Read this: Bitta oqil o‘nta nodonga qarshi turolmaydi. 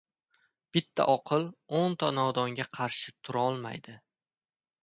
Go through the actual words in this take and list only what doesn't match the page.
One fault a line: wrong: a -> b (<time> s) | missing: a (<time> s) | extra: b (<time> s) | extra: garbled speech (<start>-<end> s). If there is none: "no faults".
no faults